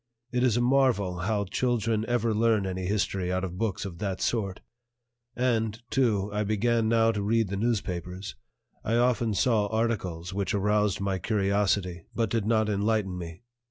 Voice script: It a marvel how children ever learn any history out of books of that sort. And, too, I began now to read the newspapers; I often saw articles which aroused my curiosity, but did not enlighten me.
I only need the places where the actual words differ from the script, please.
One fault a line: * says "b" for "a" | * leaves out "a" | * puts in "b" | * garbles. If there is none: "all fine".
* puts in "is"